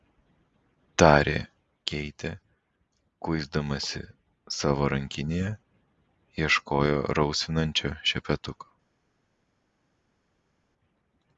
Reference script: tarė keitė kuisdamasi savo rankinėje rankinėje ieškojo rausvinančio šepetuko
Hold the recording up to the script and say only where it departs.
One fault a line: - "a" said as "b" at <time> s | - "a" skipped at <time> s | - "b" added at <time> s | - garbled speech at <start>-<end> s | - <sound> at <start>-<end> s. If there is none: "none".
- "rankinėje" skipped at 5.5 s